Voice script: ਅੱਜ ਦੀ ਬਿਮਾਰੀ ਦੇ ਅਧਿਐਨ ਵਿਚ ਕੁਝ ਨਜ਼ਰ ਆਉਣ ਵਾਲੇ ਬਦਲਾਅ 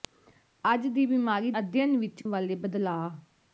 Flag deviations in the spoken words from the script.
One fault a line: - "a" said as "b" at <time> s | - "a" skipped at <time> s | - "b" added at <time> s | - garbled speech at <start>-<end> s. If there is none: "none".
- "ਦੇ" skipped at 1.5 s
- "ਕੁਝ ਨਜ਼ਰ ਆਉਣ" skipped at 2.2 s